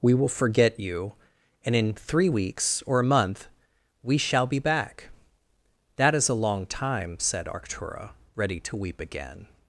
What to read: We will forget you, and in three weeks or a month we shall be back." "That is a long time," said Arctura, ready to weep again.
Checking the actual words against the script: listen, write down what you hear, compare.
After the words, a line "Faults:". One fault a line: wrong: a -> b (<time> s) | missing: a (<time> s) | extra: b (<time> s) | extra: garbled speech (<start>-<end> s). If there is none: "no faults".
We will forget you, and in three weeks or a month we shall be back." "That is a long time," said Arctura, ready to weep again.
Faults:
no faults